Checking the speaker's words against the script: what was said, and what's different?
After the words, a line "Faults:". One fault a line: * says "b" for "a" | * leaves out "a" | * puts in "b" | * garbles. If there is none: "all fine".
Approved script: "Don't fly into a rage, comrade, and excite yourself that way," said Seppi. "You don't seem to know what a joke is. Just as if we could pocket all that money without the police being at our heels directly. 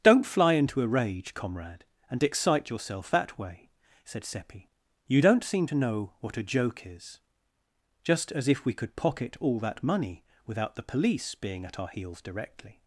"Don't fly into a rage, comrade, and excite yourself that way," said Seppi. "You don't seem to know what a joke is. Just as if we could pocket all that money without the police being at our heels directly.
Faults:
all fine